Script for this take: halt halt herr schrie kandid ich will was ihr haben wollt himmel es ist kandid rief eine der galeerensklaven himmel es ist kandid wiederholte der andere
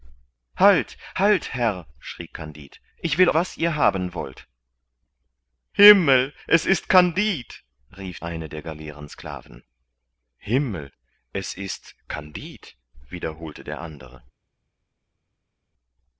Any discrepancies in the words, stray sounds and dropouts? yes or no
no